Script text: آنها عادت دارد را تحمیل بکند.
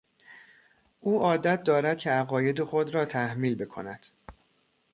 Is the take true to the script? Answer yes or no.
no